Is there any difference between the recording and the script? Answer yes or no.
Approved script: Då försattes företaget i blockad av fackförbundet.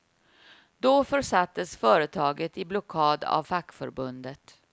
no